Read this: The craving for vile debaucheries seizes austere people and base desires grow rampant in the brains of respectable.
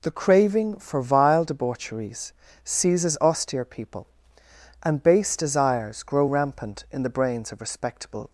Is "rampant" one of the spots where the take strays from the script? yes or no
no